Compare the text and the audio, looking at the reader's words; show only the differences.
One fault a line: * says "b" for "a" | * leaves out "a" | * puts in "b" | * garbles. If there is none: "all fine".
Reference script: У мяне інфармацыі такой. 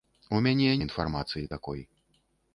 all fine